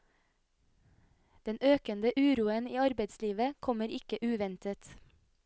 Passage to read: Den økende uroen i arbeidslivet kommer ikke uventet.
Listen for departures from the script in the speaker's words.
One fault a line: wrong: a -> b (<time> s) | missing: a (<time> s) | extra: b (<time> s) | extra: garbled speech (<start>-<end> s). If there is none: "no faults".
no faults